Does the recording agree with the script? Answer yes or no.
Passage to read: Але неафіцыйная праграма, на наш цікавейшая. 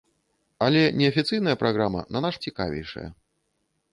yes